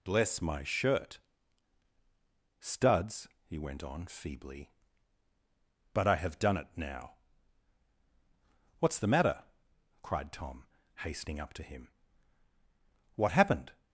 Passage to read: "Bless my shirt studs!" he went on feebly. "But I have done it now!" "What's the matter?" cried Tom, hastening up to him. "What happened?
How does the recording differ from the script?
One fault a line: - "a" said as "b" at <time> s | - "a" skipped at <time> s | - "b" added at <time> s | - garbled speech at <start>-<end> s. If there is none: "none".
none